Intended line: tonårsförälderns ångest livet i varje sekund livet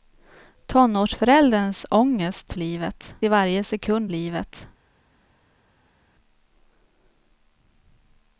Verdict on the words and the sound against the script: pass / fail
pass